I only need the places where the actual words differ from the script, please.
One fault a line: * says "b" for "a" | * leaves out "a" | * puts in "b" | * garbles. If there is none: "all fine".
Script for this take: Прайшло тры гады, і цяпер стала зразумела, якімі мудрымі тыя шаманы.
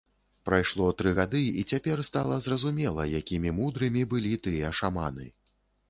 * puts in "былі"